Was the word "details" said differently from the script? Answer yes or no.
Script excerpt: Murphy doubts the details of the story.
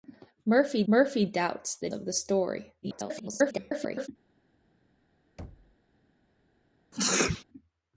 yes